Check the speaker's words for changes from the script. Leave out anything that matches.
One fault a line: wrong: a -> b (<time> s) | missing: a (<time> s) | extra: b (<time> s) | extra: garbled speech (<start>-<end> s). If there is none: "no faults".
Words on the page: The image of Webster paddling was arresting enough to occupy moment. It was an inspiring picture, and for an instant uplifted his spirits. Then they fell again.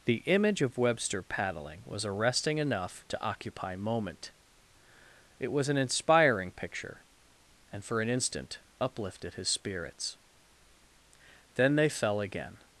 no faults